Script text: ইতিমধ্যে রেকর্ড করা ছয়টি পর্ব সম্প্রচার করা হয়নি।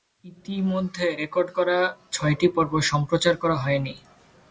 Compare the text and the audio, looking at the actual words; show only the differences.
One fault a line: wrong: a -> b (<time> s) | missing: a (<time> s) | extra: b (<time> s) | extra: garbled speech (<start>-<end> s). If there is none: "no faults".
no faults